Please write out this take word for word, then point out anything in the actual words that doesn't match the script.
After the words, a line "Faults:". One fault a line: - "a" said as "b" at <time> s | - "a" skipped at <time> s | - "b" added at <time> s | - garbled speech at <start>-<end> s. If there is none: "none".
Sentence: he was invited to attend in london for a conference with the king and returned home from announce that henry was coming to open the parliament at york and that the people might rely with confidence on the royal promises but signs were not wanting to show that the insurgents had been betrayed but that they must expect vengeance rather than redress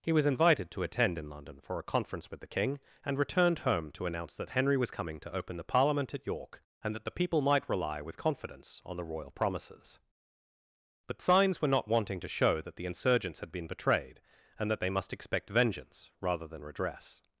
he was invited to attend in london for a conference with the king and returned home to announce that henry was coming to open the parliament at york and that the people might rely with confidence on the royal promises but signs were not wanting to show that the insurgents had been betrayed and that they must expect vengeance rather than redress
Faults:
- "from" said as "to" at 3.9 s
- "but" said as "and" at 14.6 s